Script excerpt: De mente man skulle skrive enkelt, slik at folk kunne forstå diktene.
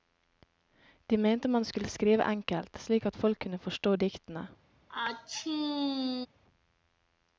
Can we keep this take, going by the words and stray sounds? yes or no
no